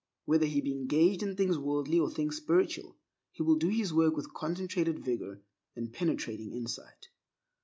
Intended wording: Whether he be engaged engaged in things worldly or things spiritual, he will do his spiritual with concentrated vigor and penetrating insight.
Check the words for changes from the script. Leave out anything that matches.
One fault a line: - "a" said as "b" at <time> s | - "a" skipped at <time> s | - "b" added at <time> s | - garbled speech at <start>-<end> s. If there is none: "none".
- "engaged" skipped at 1.2 s
- "spiritual" said as "work" at 3.9 s